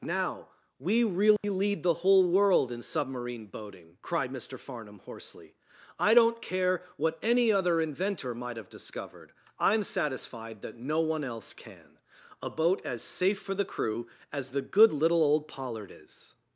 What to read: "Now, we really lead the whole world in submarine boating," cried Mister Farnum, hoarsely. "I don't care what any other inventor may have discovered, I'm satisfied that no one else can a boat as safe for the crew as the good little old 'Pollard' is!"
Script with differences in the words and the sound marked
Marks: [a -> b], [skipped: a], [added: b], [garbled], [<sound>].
"Now, we really [dropout] lead the whole world in submarine boating," cried Mister Farnum, hoarsely. "I don't care what any other inventor [may -> might] have discovered, I'm satisfied that no one else can a boat as safe for the crew as the good little old 'Pollard' is!"